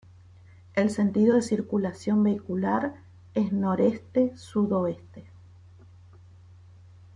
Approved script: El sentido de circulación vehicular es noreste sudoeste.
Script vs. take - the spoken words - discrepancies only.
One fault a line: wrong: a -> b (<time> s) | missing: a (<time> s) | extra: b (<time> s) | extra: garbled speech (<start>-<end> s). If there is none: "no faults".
no faults